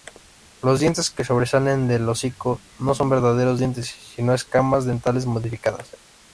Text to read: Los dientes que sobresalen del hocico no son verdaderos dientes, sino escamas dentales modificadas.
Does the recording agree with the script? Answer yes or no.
yes